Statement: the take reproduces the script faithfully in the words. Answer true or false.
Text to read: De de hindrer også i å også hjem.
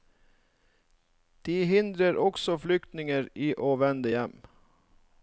false